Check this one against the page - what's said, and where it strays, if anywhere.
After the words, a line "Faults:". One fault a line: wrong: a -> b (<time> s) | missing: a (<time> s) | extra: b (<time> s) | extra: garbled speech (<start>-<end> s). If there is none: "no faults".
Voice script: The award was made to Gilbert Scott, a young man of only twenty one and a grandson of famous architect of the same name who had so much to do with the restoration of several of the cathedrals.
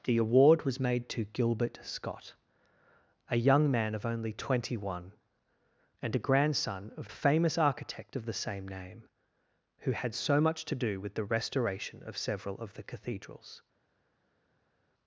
The award was made to Gilbert Scott, a young man of only twenty one and a grandson of famous architect of the same name who had so much to do with the restoration of several of the cathedrals.
Faults:
no faults